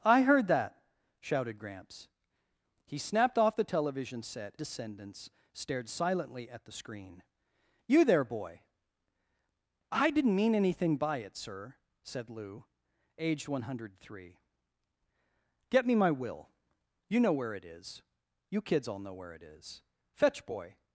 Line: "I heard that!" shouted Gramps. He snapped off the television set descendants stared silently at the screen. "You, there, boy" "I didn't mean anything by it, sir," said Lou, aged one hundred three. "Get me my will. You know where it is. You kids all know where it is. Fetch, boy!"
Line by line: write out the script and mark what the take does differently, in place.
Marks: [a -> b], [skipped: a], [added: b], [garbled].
"I heard that!" shouted Gramps. He snapped off the television set descendants stared silently at the screen. "You, there, boy" "I didn't mean anything by it, sir," said Lou, aged one hundred three. "Get me my will. You know where it is. You kids all know where it is. Fetch, boy!"